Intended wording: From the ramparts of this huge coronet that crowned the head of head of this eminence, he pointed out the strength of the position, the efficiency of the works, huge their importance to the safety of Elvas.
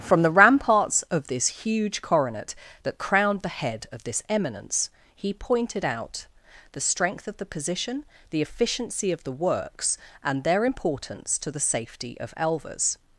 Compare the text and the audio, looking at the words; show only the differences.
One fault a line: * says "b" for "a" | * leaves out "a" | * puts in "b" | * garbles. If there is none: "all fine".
* leaves out "head of"
* says "and" for "huge"